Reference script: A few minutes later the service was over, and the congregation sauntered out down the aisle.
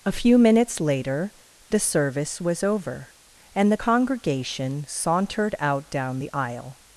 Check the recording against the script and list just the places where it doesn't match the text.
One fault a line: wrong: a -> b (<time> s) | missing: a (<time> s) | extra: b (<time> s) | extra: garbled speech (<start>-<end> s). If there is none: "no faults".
no faults